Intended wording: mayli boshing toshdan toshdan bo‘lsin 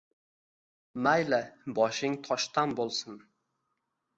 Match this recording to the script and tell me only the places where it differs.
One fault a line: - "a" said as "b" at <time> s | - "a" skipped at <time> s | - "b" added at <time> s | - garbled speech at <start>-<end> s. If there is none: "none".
- "toshdan" skipped at 2.8 s